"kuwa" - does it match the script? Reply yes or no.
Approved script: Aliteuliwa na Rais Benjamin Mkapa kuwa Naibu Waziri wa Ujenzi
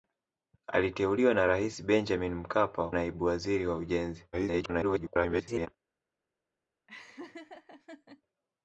no